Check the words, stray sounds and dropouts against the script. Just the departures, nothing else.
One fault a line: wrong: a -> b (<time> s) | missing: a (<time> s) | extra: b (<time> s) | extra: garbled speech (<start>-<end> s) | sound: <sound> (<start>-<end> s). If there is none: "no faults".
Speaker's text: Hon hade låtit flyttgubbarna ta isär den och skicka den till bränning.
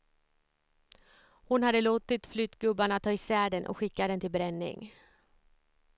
no faults